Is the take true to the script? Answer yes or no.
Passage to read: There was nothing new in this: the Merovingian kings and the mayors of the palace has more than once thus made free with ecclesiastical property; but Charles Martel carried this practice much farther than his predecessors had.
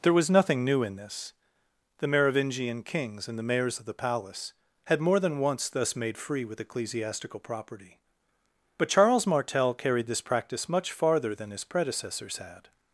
no